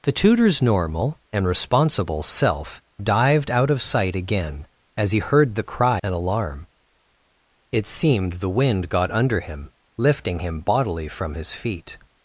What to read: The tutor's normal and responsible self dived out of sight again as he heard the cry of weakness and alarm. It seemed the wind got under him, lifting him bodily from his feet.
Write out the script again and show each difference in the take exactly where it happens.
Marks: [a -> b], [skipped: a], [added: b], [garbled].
The tutor's normal and responsible self dived out of sight again as he heard the cry [skipped: of weakness] and alarm. It seemed the wind got under him, lifting him bodily from his feet.